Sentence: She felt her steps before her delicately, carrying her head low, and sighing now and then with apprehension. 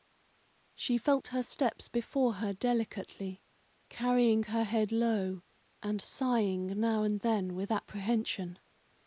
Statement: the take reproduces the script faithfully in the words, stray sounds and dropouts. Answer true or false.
true